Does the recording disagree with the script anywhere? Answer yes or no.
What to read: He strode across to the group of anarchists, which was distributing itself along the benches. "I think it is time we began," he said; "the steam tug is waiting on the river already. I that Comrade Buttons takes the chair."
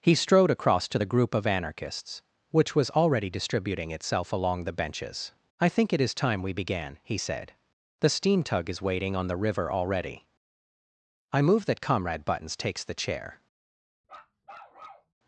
yes